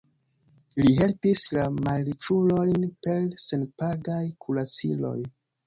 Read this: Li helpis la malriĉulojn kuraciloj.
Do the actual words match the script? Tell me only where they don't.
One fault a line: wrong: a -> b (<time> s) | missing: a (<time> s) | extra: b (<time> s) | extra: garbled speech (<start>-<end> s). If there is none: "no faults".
extra: per senpagaj (3.0 s)